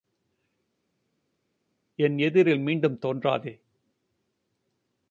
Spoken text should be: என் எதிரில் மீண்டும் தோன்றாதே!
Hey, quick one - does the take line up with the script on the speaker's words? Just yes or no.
yes